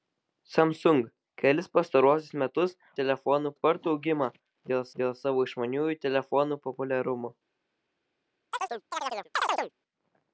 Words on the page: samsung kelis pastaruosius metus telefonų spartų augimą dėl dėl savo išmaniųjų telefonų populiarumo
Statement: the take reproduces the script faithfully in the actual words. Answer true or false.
true